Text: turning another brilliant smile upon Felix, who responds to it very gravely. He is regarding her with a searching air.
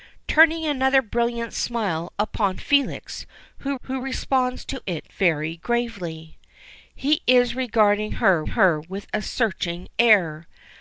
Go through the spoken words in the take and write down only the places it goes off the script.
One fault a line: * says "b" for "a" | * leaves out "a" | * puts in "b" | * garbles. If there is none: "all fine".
* puts in "who"
* puts in "her"